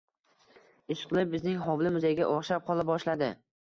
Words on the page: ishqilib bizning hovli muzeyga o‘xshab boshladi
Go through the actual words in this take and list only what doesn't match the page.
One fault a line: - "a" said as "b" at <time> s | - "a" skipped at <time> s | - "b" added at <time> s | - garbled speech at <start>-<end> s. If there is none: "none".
- "qola" added at 2.7 s